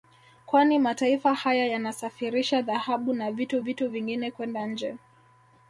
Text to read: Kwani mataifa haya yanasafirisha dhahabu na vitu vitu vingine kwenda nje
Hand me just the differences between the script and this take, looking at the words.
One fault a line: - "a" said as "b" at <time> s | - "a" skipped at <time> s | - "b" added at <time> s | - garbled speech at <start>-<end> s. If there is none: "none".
none